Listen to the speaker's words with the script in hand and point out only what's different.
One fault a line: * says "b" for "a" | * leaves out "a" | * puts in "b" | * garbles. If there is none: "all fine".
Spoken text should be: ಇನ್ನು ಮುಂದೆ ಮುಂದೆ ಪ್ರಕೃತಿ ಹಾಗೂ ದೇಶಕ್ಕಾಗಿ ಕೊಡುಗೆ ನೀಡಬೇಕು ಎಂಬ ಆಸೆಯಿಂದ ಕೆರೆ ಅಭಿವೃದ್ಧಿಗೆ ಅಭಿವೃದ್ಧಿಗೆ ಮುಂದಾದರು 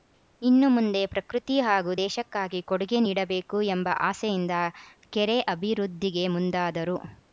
* leaves out "ಮುಂದೆ"
* leaves out "ಅಭಿವೃದ್ಧಿಗೆ"